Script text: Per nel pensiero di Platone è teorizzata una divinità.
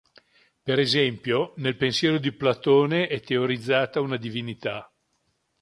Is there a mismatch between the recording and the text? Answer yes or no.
yes